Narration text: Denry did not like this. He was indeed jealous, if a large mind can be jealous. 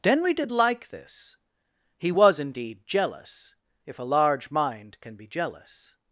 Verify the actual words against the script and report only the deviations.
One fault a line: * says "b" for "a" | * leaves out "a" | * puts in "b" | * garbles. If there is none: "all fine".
* leaves out "not"